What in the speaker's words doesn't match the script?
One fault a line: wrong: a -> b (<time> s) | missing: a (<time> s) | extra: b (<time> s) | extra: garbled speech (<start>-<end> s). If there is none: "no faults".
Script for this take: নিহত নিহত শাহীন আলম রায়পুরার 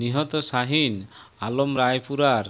missing: নিহত (0.3 s)